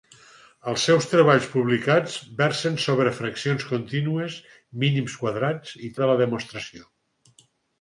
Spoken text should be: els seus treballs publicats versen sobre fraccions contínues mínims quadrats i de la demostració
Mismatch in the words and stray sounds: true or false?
false